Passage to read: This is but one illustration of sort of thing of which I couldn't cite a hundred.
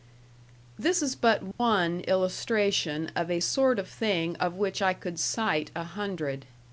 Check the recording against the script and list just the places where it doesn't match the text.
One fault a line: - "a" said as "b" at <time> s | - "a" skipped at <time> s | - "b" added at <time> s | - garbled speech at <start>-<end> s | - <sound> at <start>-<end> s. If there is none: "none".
- dropout at 1.5-1.6 s
- "a" added at 3.3 s
- "couldn't" said as "could" at 4.9 s